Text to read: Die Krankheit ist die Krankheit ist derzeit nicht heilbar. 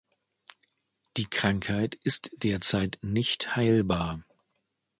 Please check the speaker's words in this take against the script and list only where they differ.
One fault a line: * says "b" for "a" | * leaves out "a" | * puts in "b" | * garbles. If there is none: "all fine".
* leaves out "die Krankheit ist"